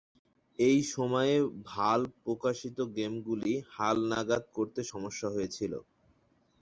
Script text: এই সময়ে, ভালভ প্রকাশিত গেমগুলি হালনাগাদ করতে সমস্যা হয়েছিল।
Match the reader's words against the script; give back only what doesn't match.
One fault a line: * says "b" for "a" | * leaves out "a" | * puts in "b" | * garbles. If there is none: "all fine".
all fine